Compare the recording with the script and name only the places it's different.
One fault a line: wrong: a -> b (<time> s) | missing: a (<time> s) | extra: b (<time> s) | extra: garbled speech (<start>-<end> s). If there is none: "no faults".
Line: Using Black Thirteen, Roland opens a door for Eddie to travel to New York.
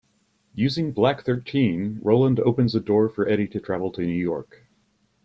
no faults